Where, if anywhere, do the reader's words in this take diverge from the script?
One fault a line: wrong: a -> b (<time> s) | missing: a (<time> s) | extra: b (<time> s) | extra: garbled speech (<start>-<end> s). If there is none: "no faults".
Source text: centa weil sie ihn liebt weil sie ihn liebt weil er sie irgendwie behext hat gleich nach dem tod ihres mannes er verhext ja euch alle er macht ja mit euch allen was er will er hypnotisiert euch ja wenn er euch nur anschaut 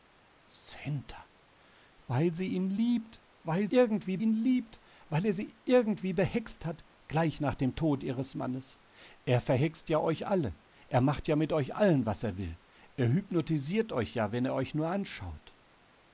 wrong: sie -> irgendwie (3.7 s)